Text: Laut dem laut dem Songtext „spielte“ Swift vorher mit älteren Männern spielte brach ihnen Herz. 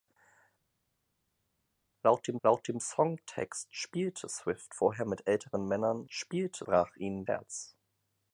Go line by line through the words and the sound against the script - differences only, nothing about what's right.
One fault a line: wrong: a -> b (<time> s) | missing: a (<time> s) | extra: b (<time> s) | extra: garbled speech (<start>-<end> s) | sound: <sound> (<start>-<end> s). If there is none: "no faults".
no faults